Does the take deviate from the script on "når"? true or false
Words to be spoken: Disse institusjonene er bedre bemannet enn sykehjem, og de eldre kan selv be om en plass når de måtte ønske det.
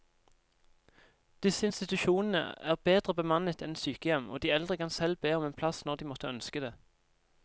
false